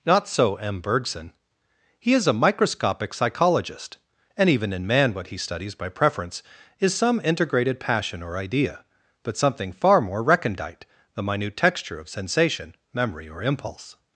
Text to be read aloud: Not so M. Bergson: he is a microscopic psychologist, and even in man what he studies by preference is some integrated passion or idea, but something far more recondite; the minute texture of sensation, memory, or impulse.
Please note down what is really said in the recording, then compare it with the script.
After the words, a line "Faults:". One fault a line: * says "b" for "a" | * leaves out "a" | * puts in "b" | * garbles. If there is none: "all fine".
Not so M. Bergson: he is a microscopic psychologist, and even in man what he studies by preference is some integrated passion or idea, but something far more recondite; the minute texture of sensation, memory, or impulse.
Faults:
all fine